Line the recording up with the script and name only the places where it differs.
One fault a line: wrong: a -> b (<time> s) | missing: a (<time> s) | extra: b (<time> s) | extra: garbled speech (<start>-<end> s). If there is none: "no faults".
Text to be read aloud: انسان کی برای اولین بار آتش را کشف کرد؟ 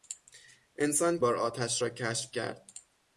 missing: کی برای اولین (1.2 s)